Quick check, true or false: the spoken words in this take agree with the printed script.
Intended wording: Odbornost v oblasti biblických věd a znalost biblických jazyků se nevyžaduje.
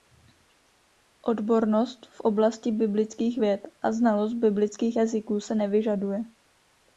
true